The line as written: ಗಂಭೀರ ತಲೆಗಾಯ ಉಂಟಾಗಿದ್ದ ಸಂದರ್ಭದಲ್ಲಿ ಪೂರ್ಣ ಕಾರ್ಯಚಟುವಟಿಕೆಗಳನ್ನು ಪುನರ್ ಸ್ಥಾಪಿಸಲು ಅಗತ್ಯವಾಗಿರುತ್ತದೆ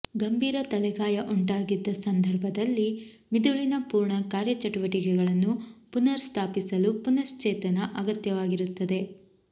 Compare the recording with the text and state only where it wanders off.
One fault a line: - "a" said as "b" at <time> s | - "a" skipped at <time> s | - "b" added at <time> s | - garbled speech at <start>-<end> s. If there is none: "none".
- "ಮಿದುಳಿನ" added at 3.3 s
- "ಪುನಶ್ಚೇತನ" added at 7.0 s